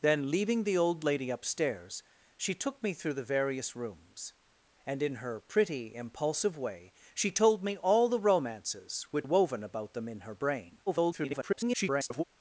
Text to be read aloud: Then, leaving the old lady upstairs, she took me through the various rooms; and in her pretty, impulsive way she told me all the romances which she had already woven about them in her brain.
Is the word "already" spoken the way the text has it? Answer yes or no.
no